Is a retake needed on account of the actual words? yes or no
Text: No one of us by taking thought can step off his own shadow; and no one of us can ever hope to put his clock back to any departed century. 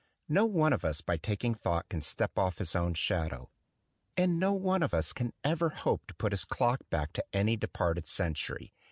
no